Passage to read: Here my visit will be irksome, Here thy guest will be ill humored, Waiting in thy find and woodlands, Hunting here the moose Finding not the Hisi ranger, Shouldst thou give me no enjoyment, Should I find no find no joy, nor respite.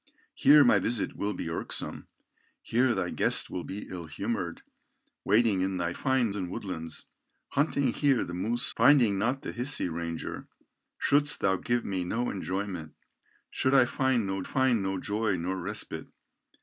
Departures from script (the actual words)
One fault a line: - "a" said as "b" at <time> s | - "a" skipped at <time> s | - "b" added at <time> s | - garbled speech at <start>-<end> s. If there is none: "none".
none